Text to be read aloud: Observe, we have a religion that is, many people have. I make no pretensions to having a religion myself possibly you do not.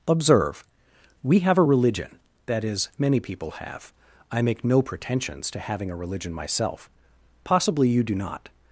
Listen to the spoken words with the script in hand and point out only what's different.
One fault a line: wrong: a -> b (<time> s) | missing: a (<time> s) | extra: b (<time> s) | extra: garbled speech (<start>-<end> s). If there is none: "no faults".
no faults